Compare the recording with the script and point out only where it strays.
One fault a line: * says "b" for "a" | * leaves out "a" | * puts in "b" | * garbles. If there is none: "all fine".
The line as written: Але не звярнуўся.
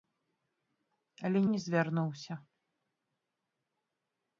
all fine